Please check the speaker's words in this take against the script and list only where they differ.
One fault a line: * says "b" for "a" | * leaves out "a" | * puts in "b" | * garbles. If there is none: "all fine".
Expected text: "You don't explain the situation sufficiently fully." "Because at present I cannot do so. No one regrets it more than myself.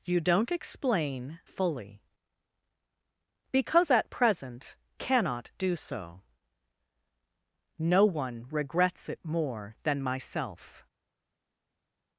* leaves out "the situation sufficiently"
* leaves out "I"